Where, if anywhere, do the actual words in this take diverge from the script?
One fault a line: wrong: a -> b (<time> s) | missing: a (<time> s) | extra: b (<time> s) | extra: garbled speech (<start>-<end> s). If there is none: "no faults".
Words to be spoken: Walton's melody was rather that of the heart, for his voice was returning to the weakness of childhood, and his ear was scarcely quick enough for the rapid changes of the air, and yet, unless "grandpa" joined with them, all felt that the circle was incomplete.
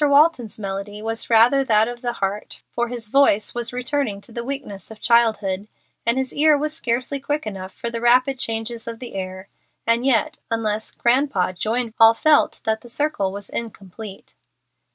missing: with them (11.9 s)